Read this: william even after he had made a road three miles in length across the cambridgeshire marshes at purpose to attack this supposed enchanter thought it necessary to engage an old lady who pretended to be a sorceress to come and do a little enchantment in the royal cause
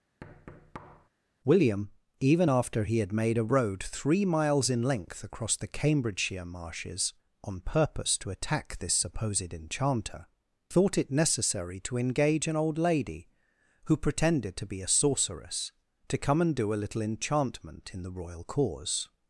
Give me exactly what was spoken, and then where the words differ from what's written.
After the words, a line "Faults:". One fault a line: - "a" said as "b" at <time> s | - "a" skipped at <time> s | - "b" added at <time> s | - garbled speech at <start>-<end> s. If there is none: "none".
william even after he had made a road three miles in length across the cambridgeshire marshes on purpose to attack this supposed enchanter thought it necessary to engage an old lady who pretended to be a sorceress to come and do a little enchantment in the royal cause
Faults:
- "at" said as "on" at 7.4 s